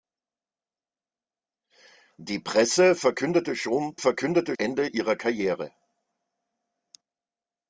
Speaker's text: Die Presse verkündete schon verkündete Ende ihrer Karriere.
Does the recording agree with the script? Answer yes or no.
yes